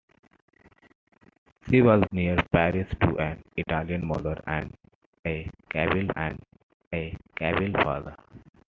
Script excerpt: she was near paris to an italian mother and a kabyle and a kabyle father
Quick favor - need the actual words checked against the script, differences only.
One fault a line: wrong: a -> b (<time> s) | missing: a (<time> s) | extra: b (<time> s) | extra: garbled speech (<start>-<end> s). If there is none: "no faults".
no faults